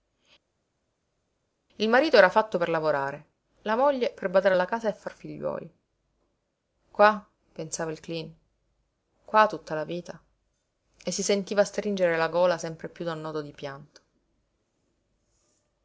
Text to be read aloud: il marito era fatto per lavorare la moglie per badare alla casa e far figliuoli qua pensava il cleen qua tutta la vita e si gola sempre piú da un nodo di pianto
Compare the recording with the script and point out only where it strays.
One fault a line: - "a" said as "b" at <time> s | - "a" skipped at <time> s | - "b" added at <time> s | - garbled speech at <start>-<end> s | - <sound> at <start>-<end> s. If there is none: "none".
- "sentiva stringere la" added at 11.2 s